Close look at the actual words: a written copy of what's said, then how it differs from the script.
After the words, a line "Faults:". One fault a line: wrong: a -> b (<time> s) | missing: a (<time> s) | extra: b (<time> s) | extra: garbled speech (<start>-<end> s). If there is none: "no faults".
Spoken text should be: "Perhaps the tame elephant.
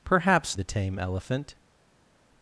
"Perhaps the tame elephant.
Faults:
no faults